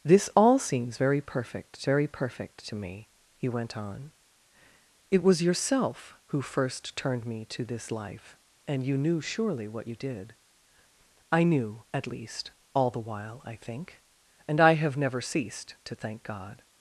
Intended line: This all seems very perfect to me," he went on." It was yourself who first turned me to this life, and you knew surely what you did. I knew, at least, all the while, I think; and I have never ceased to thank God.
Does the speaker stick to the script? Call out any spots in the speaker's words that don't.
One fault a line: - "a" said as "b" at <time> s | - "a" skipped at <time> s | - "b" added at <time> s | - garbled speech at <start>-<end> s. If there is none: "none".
- "very perfect" added at 1.8 s